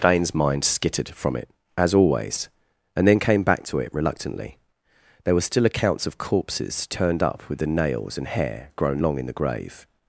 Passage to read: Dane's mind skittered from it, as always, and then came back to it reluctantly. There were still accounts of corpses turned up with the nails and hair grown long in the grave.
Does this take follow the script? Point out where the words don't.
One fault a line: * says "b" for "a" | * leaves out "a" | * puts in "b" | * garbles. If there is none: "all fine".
all fine